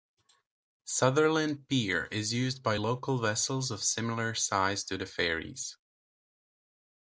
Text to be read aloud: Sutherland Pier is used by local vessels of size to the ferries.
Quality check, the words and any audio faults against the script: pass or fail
fail